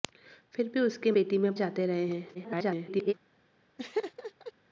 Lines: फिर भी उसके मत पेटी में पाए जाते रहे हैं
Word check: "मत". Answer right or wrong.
wrong